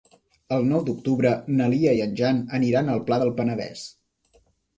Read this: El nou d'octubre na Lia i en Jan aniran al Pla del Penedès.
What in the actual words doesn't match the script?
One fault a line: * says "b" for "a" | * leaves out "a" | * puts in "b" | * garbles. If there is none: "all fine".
all fine